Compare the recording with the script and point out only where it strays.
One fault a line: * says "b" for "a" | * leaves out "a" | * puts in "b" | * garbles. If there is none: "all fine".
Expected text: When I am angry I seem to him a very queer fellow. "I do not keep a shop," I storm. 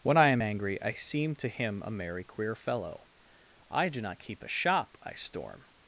* says "merry" for "very"